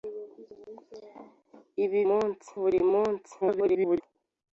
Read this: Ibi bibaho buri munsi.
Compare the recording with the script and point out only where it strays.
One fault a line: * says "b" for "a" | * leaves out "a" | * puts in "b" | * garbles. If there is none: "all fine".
* says "munsi" for "bibaho"
* garbles